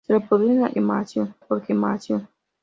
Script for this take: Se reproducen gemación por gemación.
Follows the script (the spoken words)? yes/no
yes